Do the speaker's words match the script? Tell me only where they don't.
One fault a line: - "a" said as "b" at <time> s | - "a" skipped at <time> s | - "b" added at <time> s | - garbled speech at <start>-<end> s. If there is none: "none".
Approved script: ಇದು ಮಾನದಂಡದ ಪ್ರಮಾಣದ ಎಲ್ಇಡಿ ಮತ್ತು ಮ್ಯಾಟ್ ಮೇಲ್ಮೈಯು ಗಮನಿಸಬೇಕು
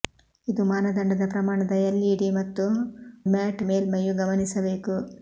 none